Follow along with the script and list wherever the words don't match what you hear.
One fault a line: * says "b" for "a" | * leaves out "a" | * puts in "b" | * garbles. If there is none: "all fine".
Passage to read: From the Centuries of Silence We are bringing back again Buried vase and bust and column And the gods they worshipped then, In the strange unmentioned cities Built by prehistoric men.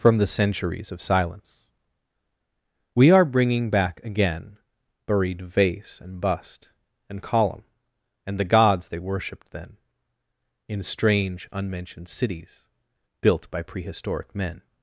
* leaves out "the"